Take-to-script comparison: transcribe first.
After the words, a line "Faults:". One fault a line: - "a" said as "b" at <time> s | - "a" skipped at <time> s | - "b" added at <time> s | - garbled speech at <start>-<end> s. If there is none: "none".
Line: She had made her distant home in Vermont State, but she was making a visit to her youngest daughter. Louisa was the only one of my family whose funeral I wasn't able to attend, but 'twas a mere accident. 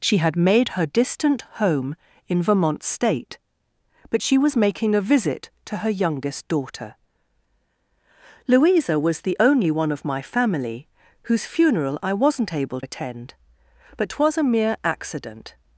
She had made her distant home in Vermont State, but she was making a visit to her youngest daughter. Louisa was the only one of my family whose funeral I wasn't able attend, but 'twas a mere accident.
Faults:
- "to" skipped at 12.8 s